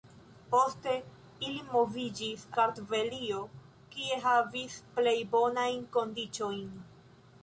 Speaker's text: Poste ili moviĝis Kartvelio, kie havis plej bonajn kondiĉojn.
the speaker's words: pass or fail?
pass